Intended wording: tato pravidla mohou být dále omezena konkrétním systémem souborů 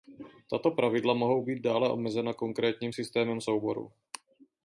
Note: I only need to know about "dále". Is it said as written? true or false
true